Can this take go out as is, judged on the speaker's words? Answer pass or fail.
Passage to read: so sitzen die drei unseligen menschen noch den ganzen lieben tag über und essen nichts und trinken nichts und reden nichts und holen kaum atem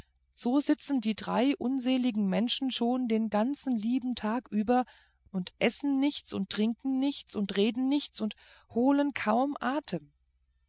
fail